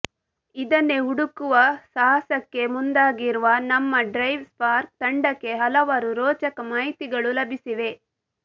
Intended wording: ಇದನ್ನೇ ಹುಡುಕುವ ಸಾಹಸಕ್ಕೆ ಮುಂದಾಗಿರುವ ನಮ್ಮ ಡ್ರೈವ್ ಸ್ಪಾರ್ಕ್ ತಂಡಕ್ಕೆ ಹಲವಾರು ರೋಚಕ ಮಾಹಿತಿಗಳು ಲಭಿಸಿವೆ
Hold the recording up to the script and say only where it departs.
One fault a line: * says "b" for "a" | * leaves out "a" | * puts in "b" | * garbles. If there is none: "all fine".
all fine